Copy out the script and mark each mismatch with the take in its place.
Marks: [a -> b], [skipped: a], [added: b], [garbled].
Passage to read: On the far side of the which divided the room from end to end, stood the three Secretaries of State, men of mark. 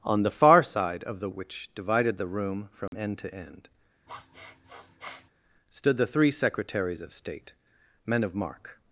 On the far side of the which divided the room from end to end, stood the three Secretaries of State, men of mark.